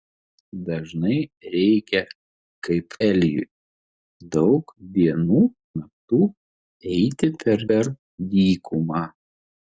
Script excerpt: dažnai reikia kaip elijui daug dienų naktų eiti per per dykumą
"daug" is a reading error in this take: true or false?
false